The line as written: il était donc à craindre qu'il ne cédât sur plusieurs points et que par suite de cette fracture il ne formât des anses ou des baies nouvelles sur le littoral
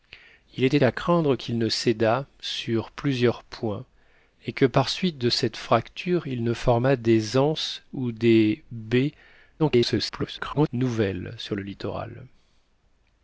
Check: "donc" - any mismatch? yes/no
yes